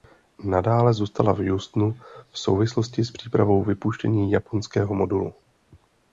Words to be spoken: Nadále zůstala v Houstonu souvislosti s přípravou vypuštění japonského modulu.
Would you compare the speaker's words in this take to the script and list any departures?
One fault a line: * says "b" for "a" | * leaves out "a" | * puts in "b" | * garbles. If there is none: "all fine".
* puts in "v"